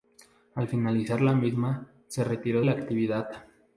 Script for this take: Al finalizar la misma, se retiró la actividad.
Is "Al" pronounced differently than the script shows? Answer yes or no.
no